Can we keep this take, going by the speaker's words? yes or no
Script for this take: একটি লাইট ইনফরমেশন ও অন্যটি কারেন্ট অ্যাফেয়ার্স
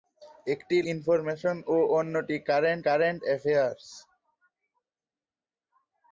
no